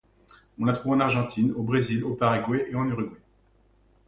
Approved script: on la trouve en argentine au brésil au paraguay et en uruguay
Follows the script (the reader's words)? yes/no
yes